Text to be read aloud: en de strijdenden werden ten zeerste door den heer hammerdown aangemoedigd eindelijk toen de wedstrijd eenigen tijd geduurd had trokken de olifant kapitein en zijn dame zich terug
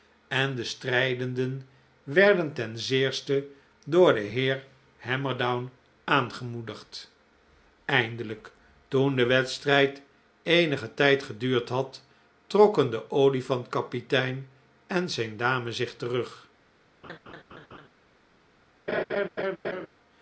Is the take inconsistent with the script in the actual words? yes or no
no